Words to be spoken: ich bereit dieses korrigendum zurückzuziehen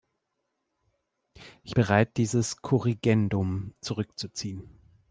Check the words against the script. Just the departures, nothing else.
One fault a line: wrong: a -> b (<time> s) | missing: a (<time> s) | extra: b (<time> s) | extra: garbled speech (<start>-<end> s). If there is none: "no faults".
no faults